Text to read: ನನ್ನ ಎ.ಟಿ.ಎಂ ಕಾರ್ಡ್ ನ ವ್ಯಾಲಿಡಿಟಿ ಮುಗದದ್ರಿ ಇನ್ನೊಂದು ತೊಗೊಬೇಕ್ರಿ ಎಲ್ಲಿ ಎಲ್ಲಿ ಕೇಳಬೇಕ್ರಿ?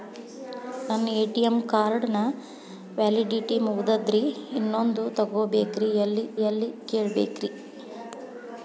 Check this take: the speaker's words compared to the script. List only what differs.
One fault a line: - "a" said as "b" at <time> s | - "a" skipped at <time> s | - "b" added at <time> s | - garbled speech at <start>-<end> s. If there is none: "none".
none